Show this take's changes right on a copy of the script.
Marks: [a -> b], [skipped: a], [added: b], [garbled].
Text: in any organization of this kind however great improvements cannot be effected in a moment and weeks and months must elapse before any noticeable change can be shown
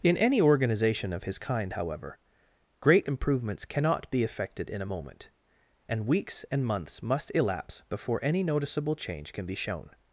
in any organization of [this -> his] kind however great improvements cannot be effected in a moment and weeks and months must elapse before any noticeable change can be shown